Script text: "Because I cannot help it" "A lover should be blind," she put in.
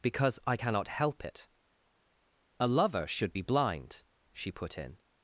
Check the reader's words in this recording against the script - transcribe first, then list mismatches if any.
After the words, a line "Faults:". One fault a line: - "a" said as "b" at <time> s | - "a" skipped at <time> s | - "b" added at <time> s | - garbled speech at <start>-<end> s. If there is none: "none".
"Because I cannot help it" "A lover should be blind," she put in.
Faults:
none